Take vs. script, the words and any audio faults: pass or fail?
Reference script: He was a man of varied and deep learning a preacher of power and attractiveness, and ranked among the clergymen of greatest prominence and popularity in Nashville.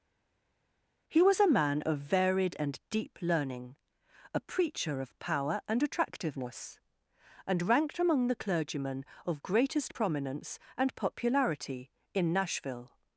pass